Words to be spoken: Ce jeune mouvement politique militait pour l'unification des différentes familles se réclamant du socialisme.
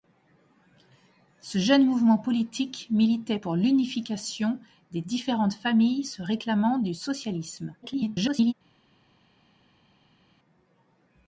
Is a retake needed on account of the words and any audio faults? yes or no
yes